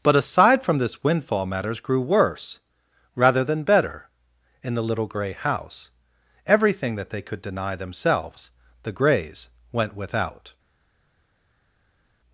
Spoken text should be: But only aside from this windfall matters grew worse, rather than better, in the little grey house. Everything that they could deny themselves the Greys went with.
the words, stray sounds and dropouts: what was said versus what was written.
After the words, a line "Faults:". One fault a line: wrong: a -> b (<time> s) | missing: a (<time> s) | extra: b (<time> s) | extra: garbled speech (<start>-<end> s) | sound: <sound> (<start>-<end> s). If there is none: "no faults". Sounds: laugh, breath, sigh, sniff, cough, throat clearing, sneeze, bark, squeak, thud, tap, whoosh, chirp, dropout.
But aside from this windfall matters grew worse, rather than better, in the little grey house. Everything that they could deny themselves the Greys went without.
Faults:
missing: only (0.1 s)
wrong: with -> without (9.9 s)